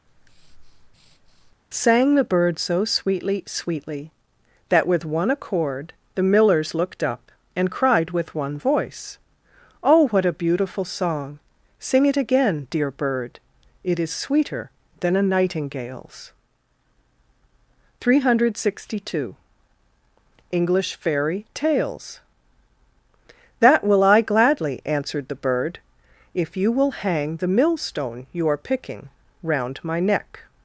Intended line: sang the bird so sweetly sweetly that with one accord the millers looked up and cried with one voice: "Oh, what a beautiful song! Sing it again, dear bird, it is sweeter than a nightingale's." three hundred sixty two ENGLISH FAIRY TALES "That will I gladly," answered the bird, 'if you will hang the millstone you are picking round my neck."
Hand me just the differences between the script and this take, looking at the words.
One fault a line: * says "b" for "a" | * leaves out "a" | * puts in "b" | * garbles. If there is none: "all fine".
all fine